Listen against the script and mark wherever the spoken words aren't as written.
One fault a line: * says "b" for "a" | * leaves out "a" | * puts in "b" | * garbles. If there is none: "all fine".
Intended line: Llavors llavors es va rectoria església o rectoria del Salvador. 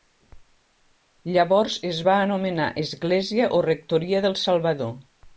* leaves out "llavors"
* says "anomenar" for "rectoria"